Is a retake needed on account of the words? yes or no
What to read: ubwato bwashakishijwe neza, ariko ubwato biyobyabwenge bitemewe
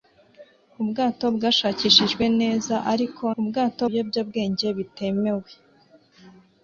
no